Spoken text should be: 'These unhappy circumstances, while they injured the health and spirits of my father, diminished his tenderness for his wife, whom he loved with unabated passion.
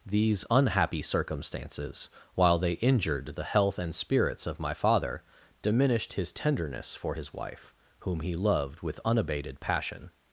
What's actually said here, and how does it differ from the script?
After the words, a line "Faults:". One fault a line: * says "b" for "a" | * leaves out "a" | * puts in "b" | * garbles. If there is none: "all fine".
'These unhappy circumstances, while they injured the health and spirits of my father, diminished his tenderness for his wife, whom he loved with unabated passion.
Faults:
all fine